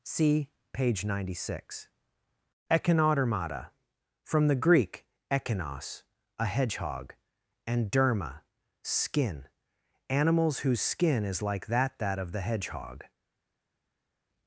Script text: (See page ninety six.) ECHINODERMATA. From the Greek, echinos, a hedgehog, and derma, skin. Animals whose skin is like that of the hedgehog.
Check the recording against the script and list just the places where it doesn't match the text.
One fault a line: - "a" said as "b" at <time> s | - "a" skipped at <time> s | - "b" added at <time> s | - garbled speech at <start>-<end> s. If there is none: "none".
- "that" added at 12.0 s